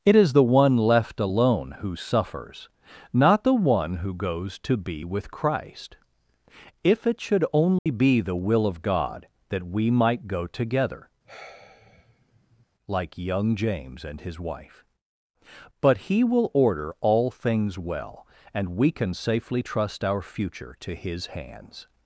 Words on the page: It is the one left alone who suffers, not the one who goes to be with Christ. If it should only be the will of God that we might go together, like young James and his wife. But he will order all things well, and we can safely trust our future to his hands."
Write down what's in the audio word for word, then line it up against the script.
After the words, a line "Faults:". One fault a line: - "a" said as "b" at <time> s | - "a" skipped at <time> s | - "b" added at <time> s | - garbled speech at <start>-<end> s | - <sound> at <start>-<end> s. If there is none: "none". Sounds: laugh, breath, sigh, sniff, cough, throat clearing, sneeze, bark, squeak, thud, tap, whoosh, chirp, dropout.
It is the one left alone who suffers, not the one who goes to be with Christ. If it should only be the will of God that we might go together, like young James and his wife. But he will order all things well, and we can safely trust our future to his hands."
Faults:
- dropout at 7.8-7.9 s
- sigh at 11.2-12.7 s